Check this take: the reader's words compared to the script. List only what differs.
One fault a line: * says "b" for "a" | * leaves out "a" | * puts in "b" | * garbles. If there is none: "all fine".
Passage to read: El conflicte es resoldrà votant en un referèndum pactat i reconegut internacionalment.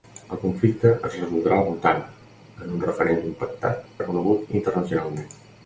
* leaves out "i"